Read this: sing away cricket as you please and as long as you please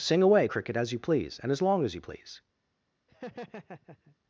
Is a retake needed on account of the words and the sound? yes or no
yes